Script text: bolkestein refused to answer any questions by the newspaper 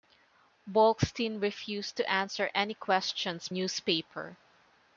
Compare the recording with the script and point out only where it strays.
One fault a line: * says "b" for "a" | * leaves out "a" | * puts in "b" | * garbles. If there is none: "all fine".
* leaves out "by the"